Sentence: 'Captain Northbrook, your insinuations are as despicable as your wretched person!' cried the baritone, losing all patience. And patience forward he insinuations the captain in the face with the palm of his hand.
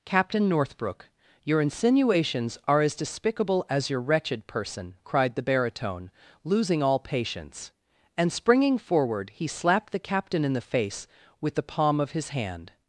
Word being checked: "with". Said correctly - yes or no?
yes